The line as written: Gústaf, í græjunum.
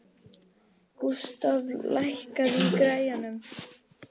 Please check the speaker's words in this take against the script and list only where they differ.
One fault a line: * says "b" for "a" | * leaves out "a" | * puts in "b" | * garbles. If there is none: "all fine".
* puts in "lækkaðu"